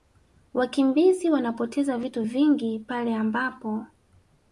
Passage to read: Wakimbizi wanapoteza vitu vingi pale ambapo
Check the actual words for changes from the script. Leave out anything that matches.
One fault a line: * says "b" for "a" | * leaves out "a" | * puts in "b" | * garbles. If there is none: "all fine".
all fine